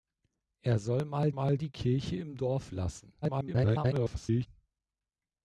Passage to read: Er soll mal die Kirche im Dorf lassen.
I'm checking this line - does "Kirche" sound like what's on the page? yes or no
yes